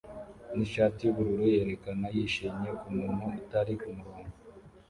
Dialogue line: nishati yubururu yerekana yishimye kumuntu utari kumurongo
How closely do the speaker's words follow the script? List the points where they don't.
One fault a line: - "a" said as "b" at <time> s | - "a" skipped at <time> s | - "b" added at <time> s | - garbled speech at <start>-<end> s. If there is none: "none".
none